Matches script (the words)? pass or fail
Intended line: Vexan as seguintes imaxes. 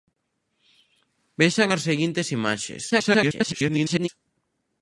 fail